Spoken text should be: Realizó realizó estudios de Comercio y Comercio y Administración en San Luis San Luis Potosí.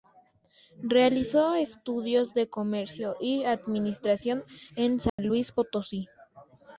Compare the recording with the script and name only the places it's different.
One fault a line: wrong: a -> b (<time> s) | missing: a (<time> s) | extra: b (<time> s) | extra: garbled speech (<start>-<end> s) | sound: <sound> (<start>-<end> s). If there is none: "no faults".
missing: realizó (1.5 s)
missing: Comercio y (3.4 s)
sound: dropout (5.1-5.2 s)
missing: San Luis (5.5 s)